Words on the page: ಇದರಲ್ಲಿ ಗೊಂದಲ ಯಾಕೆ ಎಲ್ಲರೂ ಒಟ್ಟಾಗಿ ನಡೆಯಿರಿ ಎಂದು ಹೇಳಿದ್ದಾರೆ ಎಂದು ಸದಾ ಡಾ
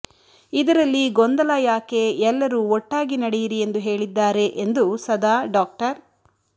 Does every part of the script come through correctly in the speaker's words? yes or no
yes